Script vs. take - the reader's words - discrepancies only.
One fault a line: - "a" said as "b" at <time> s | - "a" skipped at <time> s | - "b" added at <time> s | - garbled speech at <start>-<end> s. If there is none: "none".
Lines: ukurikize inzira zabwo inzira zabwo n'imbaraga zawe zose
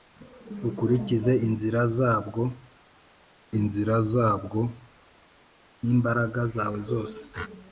none